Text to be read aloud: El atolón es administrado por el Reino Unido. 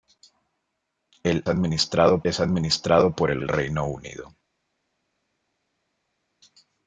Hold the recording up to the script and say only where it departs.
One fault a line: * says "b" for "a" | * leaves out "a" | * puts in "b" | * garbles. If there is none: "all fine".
* says "administrado" for "atolón"
* puts in "el"